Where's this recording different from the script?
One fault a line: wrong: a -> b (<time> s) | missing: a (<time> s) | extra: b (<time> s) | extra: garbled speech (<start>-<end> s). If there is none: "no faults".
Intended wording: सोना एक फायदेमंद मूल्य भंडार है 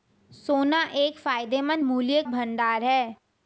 no faults